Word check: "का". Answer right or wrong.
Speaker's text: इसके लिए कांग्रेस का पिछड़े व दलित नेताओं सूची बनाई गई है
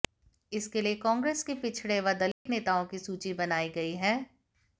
wrong